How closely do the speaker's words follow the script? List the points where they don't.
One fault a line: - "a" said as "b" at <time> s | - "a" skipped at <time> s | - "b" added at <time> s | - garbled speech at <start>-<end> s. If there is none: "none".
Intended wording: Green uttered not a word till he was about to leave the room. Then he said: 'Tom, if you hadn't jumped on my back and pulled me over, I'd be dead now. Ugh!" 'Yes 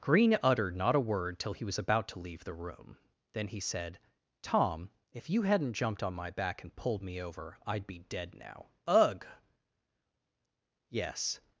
none